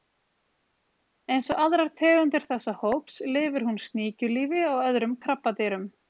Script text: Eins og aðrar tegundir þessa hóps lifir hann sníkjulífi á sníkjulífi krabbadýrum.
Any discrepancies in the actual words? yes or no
yes